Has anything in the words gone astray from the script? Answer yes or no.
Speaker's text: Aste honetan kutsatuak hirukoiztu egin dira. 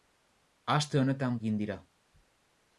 yes